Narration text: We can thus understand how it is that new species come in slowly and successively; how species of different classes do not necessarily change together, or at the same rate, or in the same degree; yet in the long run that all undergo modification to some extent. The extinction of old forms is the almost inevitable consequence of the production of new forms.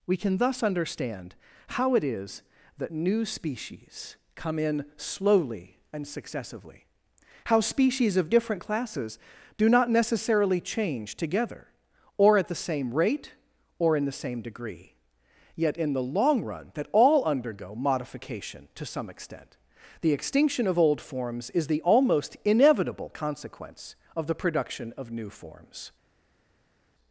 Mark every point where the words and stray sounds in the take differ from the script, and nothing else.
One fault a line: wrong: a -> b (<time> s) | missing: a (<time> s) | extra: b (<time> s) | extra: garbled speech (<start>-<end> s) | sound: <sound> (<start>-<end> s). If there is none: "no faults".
no faults